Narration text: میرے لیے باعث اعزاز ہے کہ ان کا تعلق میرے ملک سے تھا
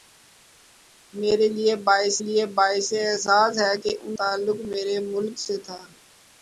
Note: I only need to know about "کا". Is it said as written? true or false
false